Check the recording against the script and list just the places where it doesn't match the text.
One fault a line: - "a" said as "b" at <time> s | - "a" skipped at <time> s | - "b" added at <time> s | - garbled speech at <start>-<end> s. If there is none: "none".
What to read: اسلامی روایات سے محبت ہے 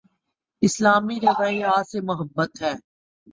none